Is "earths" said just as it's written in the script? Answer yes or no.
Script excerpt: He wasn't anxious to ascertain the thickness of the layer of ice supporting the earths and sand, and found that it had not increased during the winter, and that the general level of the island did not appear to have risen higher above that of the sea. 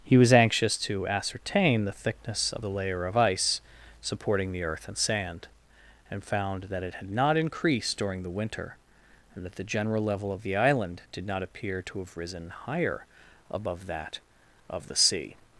no